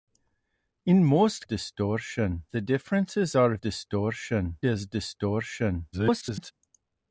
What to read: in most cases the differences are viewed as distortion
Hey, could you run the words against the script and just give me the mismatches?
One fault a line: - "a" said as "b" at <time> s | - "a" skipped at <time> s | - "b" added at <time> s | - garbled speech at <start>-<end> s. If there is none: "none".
- "cases" said as "distortion" at 1.4 s
- "viewed" said as "distortion" at 3.6 s
- garbled speech at 5.9-6.5 s